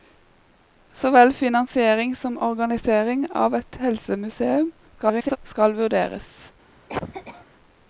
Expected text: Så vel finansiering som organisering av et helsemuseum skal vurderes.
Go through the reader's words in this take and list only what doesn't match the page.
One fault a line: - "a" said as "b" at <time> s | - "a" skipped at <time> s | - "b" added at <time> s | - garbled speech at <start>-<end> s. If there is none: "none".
- garbled speech at 4.9-5.4 s